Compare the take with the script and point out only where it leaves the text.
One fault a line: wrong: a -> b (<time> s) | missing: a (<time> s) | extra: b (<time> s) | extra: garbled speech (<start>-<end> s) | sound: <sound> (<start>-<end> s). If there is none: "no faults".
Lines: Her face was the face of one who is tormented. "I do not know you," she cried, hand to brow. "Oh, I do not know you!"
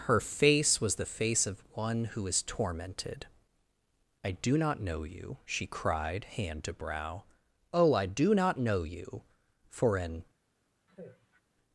extra: For an (9.7 s)
sound: sigh (10.9-11.4 s)